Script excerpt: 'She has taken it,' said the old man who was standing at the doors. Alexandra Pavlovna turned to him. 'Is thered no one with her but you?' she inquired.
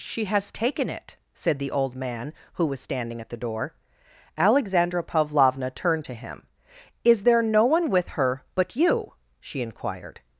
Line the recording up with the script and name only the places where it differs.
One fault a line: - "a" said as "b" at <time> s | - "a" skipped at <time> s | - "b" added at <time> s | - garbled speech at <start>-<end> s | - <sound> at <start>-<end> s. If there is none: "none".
- "doors" said as "door" at 3.4 s
- "thered" said as "there" at 7.2 s